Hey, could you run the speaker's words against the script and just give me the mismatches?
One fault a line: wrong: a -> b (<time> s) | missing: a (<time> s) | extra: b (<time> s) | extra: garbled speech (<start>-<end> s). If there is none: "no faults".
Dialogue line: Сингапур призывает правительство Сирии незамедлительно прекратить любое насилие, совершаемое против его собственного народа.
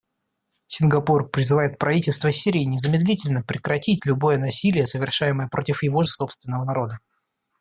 no faults